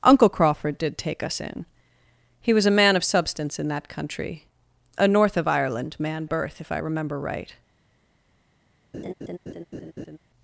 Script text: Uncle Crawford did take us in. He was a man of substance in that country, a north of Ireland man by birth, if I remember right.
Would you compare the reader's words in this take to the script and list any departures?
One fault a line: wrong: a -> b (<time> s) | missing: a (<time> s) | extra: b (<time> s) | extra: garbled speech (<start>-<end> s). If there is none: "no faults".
missing: by (6.2 s)